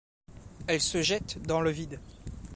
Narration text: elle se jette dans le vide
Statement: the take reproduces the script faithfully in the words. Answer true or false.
true